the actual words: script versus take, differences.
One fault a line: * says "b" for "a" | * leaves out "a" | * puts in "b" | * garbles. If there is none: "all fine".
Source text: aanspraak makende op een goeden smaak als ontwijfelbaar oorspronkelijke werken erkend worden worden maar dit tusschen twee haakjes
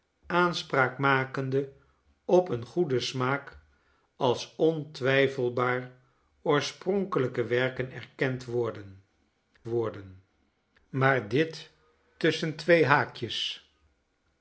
all fine